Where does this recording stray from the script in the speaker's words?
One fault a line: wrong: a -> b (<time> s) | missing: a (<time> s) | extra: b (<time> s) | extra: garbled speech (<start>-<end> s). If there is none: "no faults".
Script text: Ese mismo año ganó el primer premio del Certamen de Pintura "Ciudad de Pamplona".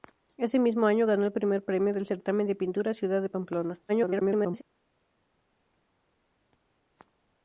extra: garbled speech (3.9-4.6 s)